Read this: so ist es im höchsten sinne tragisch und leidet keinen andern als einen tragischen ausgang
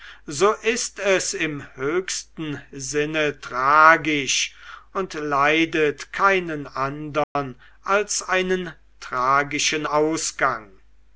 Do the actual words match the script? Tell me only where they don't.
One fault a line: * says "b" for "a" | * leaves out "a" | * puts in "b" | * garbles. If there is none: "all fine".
all fine